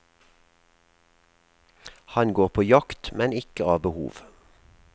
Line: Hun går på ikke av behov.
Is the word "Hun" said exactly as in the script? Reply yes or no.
no